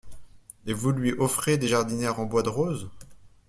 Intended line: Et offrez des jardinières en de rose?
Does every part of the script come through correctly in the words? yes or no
no